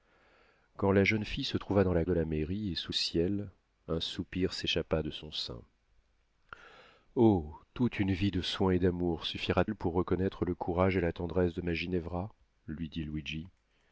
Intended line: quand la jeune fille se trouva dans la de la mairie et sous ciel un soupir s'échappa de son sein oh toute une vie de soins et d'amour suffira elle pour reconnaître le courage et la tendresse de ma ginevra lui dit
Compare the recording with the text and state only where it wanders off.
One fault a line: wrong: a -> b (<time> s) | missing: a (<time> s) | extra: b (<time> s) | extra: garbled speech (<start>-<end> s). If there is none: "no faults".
no faults